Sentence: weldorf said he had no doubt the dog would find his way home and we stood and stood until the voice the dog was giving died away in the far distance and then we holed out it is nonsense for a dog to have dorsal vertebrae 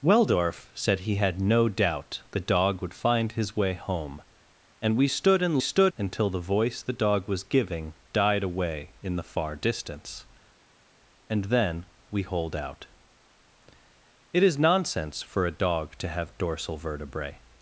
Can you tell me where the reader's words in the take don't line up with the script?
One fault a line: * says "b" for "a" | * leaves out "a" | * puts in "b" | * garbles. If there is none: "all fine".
all fine